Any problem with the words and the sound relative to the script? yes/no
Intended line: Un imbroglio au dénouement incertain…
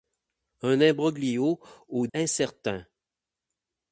yes